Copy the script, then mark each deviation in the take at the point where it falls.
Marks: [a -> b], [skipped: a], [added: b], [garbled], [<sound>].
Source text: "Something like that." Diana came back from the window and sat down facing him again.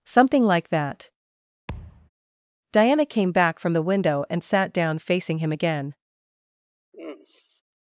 "Something like that." [thud] Diana came back from the window and sat down facing him again. [sigh]